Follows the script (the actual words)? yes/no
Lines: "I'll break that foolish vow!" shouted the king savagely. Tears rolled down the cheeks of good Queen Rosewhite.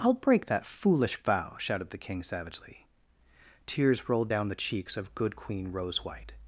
yes